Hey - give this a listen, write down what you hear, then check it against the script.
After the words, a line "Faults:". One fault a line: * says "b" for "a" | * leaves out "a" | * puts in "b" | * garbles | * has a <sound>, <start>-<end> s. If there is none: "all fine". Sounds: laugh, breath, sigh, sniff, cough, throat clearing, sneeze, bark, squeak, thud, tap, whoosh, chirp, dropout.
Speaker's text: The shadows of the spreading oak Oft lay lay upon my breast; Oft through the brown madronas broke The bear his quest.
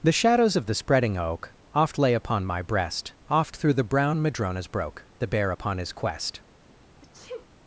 The shadows of the spreading oak Oft lay upon my breast; Oft through the brown madronas broke The bear upon his quest.
Faults:
* leaves out "lay"
* puts in "upon"
* has a sneeze, 7.0-7.5 s